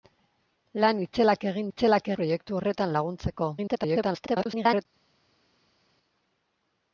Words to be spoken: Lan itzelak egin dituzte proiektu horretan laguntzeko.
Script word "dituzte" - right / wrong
wrong